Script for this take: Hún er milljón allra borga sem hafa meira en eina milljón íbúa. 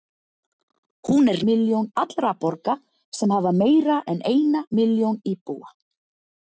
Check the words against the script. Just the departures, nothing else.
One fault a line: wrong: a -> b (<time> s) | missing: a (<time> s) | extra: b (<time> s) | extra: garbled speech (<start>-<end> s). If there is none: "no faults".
no faults